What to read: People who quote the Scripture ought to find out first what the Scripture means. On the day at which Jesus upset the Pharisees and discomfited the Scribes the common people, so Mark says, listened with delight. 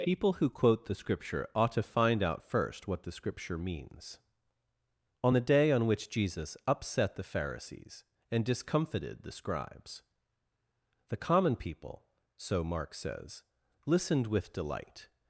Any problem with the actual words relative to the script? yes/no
yes